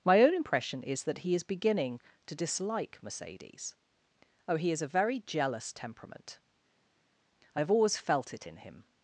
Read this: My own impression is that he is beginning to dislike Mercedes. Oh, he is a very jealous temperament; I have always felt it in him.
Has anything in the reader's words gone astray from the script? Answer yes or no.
no